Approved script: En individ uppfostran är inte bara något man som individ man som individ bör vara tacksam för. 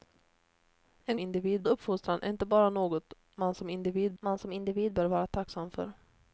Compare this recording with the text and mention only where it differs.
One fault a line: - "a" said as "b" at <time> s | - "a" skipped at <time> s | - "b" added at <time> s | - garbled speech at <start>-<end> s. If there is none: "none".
none